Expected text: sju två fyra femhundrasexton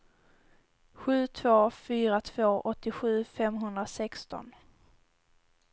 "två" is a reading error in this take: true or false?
false